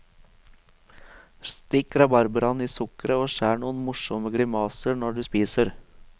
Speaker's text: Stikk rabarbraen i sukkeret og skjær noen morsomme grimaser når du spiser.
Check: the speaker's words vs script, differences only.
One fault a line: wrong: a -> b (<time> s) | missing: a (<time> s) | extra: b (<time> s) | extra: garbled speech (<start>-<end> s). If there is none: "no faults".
no faults